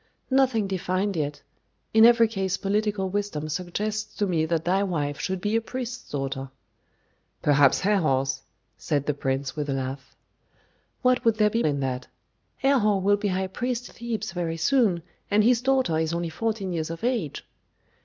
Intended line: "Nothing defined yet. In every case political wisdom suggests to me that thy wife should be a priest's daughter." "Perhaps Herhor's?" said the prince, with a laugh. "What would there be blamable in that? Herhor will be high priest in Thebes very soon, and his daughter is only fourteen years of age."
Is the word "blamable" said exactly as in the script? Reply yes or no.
no